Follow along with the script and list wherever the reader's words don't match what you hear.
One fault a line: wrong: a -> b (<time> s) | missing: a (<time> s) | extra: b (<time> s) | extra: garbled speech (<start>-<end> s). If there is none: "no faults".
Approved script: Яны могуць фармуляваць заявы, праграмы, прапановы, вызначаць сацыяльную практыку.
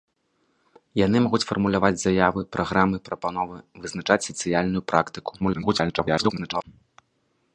extra: garbled speech (5.4-6.6 s)